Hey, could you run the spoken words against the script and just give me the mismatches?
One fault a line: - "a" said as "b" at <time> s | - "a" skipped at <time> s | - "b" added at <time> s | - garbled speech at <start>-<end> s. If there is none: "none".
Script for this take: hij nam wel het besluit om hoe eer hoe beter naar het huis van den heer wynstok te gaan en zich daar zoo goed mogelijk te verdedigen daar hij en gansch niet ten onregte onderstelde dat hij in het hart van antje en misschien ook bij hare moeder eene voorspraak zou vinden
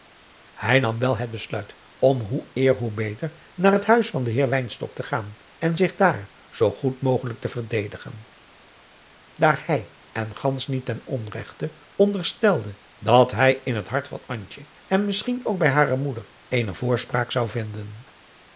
none